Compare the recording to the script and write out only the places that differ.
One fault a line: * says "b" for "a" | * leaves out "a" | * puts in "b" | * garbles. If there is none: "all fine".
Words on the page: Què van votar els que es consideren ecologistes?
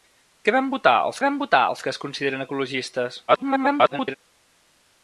* puts in "van votar els"
* garbles